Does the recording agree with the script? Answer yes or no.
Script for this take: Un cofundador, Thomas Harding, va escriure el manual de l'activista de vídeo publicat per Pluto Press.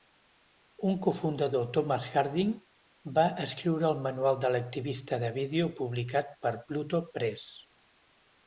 yes